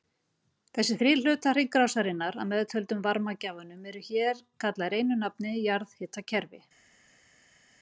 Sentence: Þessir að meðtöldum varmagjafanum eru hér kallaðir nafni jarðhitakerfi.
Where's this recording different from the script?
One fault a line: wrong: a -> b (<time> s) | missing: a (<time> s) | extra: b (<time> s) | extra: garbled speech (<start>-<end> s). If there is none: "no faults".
extra: þrír hlutar hringrásarinnar (1.0 s)
extra: einu (5.0 s)